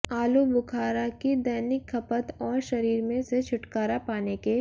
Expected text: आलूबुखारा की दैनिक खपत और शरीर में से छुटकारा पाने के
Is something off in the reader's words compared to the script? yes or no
no